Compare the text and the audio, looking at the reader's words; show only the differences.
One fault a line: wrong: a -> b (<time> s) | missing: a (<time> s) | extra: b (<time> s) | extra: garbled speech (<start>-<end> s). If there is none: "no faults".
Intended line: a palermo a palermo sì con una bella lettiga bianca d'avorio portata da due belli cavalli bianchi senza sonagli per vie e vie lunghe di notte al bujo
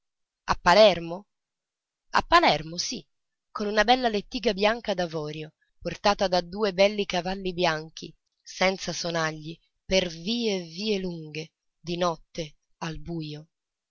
no faults